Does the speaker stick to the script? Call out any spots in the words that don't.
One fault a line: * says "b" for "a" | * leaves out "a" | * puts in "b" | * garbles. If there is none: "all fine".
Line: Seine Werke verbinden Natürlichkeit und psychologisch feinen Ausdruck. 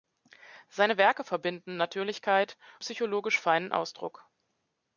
* leaves out "und"